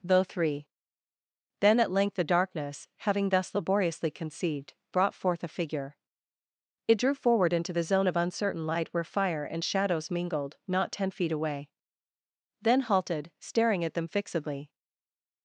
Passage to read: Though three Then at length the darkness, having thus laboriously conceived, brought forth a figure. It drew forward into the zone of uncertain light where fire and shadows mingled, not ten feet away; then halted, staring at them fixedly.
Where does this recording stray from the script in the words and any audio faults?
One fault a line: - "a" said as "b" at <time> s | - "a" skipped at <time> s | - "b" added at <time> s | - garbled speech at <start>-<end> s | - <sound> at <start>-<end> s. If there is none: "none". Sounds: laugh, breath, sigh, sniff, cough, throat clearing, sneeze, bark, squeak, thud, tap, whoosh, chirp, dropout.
none